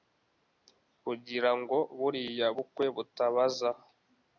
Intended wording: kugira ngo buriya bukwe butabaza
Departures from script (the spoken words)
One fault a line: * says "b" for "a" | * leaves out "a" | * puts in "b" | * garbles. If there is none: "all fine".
all fine